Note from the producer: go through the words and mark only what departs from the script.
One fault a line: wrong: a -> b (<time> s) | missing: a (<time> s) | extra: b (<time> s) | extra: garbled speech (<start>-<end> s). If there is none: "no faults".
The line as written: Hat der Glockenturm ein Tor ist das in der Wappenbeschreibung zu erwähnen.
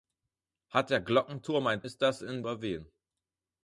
missing: Tor (1.9 s)
missing: der Wappenbeschreibung zu (2.4 s)